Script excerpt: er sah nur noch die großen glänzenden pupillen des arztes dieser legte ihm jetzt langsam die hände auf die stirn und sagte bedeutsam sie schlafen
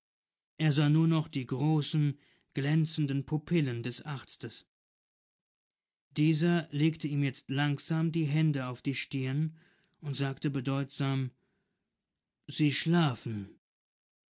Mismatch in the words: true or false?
false